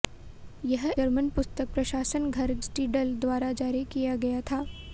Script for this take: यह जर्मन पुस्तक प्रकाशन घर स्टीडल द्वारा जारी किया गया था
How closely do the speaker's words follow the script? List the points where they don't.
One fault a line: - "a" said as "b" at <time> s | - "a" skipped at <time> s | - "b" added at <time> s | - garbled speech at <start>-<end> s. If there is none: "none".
none